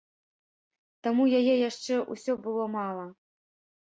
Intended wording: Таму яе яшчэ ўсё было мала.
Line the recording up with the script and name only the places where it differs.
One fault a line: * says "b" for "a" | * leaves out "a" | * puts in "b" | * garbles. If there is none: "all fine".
all fine